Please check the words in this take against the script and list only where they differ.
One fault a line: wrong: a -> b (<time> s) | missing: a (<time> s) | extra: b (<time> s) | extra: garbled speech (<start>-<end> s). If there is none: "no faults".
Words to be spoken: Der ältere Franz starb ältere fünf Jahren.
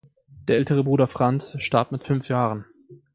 extra: Bruder (0.8 s)
wrong: ältere -> mit (1.9 s)